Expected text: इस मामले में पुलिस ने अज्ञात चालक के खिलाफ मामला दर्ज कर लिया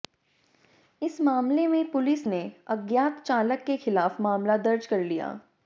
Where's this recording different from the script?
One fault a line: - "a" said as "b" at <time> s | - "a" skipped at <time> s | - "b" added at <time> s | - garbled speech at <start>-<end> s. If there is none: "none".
none